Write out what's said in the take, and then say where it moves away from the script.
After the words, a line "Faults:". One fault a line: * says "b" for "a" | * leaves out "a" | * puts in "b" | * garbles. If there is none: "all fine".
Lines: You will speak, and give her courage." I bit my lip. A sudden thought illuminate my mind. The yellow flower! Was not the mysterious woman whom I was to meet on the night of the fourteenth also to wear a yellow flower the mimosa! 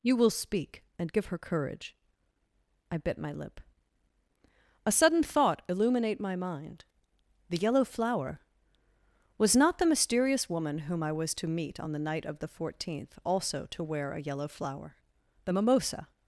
You will speak, and give her courage." I bit my lip. A sudden thought illuminate my mind. The yellow flower! Was not the mysterious woman whom I was to meet on the night of the fourteenth also to wear a yellow flower the mimosa!
Faults:
all fine